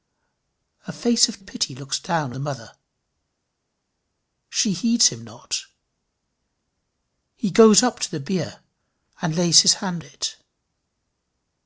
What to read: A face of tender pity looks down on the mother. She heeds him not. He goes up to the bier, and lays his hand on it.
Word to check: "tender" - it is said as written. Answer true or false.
false